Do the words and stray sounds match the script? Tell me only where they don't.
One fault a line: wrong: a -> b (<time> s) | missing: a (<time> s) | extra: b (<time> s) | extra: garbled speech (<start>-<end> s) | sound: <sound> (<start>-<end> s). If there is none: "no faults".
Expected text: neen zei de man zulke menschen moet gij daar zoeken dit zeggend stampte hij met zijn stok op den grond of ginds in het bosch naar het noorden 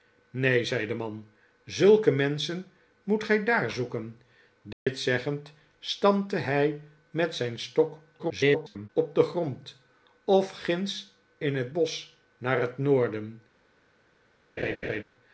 sound: dropout (4.7-4.9 s)
extra: garbled speech (8.2-8.9 s)
sound: laugh (14.6-15.0 s)